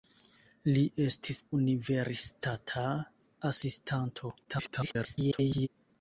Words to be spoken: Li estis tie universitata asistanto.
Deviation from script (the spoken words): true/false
true